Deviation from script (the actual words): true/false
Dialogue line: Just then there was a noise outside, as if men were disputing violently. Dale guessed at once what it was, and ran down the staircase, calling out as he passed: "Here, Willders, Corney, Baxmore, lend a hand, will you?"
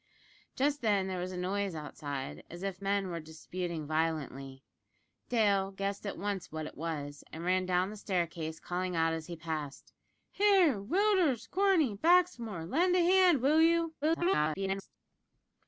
true